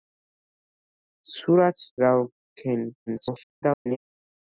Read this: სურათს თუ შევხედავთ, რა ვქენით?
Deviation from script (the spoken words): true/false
true